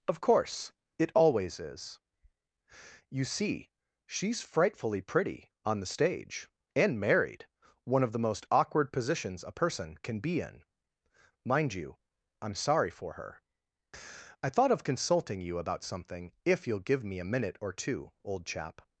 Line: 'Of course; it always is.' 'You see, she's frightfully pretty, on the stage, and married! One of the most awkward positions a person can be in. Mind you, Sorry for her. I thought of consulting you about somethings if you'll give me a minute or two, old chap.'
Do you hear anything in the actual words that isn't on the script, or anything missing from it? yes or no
yes